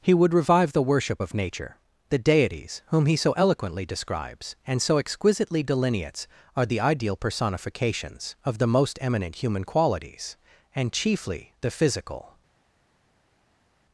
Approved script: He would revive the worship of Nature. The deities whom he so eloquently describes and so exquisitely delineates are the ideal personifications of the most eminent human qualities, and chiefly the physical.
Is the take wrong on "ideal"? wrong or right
right